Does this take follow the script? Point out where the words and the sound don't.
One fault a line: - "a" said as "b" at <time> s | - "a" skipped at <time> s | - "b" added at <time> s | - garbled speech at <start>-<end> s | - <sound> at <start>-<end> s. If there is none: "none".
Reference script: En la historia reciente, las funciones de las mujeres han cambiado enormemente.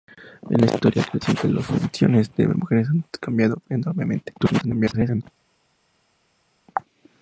- garbled speech at 4.4-5.2 s